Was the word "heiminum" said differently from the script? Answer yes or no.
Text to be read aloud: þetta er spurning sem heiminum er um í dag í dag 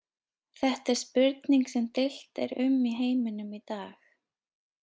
yes